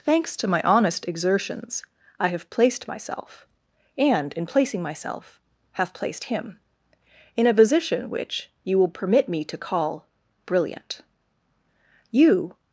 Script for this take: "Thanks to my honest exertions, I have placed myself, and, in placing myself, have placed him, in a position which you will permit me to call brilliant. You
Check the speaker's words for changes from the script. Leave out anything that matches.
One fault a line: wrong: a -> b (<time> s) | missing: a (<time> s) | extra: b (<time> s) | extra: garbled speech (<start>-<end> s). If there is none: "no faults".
no faults